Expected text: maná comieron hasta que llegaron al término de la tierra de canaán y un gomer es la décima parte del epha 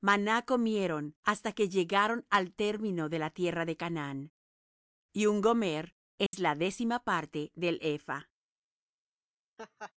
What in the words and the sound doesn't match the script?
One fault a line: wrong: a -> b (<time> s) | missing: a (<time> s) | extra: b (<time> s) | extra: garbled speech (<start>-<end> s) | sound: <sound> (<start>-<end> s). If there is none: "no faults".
sound: dropout (6.3-6.3 s)
sound: laugh (9.6-9.9 s)